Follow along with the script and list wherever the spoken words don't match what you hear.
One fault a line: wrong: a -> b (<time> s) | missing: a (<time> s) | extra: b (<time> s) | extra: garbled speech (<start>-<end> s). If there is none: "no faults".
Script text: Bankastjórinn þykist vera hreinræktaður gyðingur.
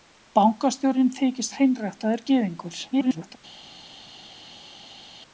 missing: vera (1.5 s)
extra: garbled speech (2.9-3.4 s)